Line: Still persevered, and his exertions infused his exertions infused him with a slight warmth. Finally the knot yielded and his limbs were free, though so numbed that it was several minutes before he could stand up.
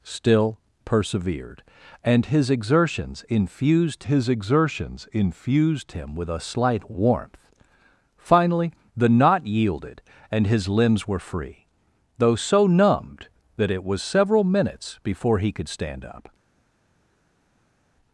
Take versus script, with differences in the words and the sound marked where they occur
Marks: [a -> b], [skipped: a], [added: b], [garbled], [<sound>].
Still persevered, and his exertions infused his exertions infused him with a slight warmth. Finally the knot yielded and his limbs were free, though so numbed that it was several minutes before he could stand up.